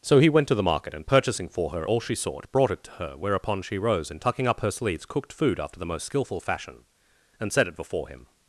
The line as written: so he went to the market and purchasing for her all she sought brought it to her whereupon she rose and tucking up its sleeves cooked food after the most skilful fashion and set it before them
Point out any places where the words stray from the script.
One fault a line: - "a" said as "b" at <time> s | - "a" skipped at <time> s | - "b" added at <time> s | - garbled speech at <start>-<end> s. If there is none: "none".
- "its" said as "her" at 4.6 s
- "them" said as "him" at 8.1 s